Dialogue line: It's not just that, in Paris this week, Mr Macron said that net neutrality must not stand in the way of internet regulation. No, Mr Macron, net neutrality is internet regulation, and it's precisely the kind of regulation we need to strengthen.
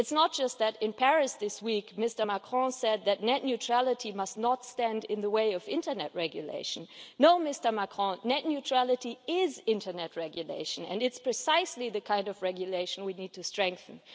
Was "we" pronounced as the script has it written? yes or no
yes